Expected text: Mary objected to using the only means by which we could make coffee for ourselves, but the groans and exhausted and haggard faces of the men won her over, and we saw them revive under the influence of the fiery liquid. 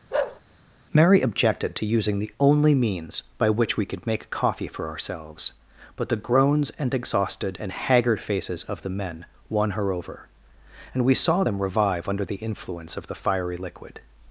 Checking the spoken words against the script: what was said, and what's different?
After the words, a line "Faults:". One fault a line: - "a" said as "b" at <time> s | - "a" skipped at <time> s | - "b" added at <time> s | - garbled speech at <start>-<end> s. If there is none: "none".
Mary objected to using the only means by which we could make coffee for ourselves, but the groans and exhausted and haggard faces of the men won her over, and we saw them revive under the influence of the fiery liquid.
Faults:
none